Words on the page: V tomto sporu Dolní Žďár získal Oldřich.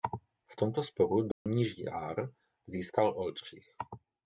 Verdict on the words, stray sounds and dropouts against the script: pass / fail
fail